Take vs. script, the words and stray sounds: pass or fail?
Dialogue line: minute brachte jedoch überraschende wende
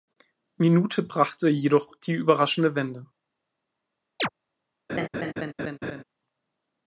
fail